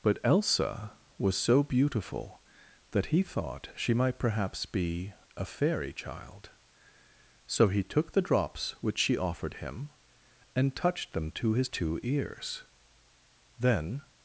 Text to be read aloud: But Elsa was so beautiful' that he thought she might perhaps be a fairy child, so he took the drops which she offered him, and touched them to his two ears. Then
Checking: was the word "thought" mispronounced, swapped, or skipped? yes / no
no